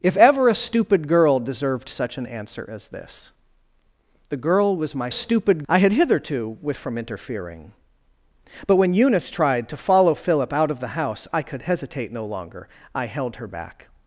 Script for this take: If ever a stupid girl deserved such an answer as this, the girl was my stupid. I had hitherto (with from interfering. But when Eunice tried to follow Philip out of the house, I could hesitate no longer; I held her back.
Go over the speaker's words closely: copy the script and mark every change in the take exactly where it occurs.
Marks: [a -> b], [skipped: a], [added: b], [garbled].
If ever a stupid girl deserved such an answer as this, the girl was my stupid. I had hitherto (with from interfering. But when Eunice tried to follow Philip out of the house, I could hesitate no longer; I held her back.